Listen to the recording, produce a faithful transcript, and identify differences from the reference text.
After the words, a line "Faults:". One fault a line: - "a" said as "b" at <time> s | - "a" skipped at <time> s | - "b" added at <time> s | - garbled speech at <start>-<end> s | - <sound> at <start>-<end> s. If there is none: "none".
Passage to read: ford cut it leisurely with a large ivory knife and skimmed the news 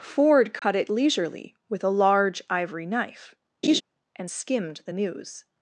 ford cut it leisurely with a large ivory knife and skimmed the news
Faults:
- dropout at 0.6-0.6 s
- laugh at 3.6-3.8 s